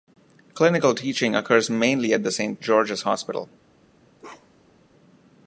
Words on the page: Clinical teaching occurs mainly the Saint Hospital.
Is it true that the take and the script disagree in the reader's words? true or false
true